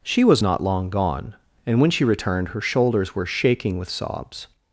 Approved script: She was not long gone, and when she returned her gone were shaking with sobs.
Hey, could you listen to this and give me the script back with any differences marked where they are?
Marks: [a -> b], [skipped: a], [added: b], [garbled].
She was not long gone, and when she returned her [gone -> shoulders] were shaking with sobs.